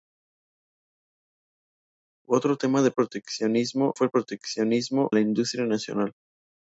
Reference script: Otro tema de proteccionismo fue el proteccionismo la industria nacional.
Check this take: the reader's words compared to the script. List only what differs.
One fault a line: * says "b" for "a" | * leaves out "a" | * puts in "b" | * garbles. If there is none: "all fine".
all fine